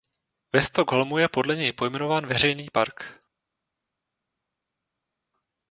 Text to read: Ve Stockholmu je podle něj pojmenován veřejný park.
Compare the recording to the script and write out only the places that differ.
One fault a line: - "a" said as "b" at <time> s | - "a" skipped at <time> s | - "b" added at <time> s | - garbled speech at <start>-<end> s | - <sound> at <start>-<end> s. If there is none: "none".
none